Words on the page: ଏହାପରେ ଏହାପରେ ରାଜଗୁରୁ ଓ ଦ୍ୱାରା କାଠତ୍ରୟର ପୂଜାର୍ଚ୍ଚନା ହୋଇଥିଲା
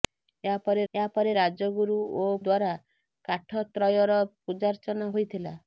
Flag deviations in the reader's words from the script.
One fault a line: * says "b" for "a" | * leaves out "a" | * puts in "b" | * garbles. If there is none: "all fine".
all fine